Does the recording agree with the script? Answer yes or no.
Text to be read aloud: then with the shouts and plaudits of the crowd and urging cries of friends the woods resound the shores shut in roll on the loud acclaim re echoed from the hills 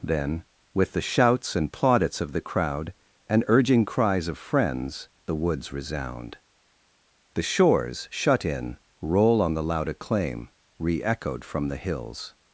yes